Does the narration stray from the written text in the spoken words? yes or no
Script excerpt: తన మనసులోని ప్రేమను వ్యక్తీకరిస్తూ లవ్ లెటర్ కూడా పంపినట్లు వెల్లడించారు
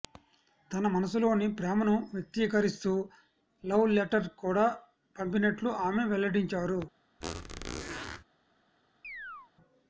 yes